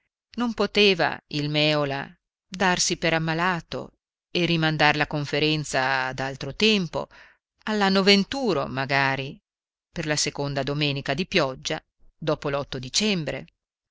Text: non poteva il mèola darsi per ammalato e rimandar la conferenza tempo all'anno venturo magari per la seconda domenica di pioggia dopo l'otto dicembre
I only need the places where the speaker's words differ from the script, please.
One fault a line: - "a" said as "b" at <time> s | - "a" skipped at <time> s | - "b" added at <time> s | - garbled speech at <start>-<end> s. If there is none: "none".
- "ad altro" added at 6.1 s